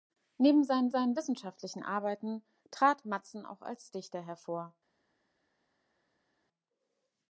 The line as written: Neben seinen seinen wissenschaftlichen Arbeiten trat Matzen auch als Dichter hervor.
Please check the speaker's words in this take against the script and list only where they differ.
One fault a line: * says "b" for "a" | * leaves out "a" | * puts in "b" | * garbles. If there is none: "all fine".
all fine